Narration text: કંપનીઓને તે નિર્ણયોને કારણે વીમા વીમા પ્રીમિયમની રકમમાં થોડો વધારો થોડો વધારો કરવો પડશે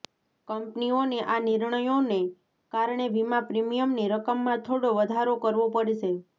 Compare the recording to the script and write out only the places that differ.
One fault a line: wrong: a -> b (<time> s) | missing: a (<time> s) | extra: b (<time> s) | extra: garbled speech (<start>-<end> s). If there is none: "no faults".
wrong: તે -> આ (1.2 s)
missing: વીમા (3.4 s)
missing: થોડો વધારો (5.4 s)